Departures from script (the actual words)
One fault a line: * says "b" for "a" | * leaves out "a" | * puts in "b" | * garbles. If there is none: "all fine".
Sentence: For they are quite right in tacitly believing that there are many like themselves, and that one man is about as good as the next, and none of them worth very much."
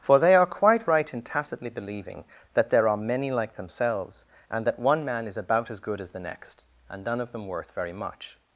all fine